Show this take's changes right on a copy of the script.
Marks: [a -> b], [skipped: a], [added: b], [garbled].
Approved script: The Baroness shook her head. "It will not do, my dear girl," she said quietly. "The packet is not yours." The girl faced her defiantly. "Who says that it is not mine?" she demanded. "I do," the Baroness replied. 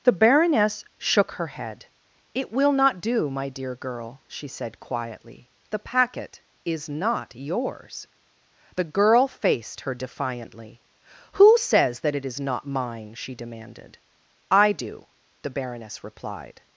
The Baroness shook her head. "It will not do, my dear girl," she said quietly. "The packet is not yours." The girl faced her defiantly. "Who says that it is not mine?" she demanded. "I do," the Baroness replied.